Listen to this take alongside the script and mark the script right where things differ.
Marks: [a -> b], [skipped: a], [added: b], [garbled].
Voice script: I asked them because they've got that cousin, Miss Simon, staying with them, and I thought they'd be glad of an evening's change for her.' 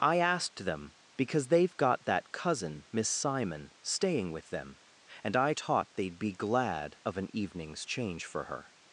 I asked them because they've got that cousin, Miss Simon, staying with them, and I [thought -> taught] they'd be glad of an evening's change for her.'